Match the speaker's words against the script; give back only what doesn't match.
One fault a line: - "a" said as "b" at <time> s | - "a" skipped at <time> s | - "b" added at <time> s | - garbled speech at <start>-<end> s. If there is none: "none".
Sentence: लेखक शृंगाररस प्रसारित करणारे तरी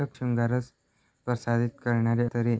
none